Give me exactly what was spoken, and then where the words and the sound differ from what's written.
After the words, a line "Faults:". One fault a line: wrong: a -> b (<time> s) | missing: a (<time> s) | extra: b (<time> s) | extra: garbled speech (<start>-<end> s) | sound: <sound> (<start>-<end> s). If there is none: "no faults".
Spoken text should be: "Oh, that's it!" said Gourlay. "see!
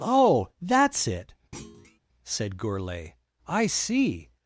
"Oh, that's it!" said Gourlay. "I see!
Faults:
sound: thud (1.5-2.0 s)
extra: I (3.5 s)